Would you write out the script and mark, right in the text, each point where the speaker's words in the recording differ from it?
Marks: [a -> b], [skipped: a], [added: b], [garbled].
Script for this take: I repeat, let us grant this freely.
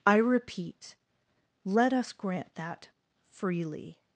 I repeat, let us grant [this -> that] freely.